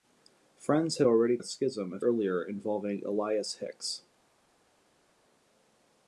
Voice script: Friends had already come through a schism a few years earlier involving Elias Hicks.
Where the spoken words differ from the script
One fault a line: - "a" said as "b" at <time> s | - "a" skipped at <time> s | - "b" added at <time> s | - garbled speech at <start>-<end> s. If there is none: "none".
- "come through" skipped at 1.4 s
- "few years" skipped at 2.0 s